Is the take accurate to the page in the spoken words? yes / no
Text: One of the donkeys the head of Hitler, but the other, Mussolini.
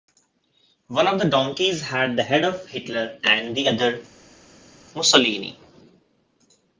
no